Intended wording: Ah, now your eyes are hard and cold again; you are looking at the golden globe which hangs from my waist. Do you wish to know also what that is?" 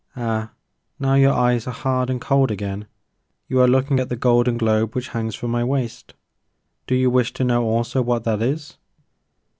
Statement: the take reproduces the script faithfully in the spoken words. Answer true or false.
true